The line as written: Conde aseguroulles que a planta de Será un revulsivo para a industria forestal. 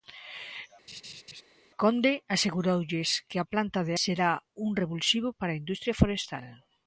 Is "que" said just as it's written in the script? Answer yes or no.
yes